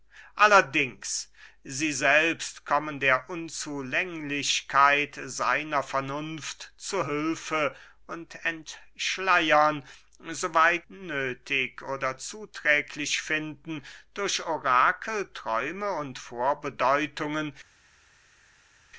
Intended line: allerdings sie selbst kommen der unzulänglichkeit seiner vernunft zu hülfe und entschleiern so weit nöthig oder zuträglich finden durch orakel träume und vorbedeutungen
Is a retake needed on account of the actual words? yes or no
no